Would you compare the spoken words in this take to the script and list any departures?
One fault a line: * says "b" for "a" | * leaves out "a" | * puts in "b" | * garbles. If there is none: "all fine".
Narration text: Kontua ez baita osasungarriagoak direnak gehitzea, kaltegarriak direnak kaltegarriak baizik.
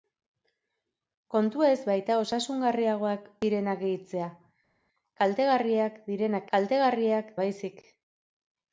all fine